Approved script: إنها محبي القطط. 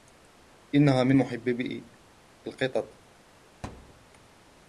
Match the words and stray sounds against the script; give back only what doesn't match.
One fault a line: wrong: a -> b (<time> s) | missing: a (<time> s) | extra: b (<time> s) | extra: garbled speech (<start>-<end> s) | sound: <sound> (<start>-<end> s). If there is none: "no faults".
extra: من (1.0 s)
sound: thud (3.6-4.1 s)